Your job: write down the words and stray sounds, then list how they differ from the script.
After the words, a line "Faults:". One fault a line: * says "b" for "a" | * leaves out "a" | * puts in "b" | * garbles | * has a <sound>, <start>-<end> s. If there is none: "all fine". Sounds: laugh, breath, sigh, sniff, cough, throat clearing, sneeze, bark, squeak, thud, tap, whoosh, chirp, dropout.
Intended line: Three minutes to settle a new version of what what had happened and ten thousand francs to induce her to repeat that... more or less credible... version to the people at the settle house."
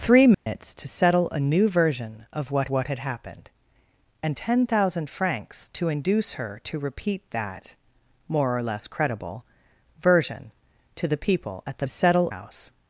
Three minutes to settle a new version of what what had happened and ten thousand francs to induce her to repeat that... more or less credible... version to the people at the settle house."
Faults:
* has a dropout, 0.3-0.5 s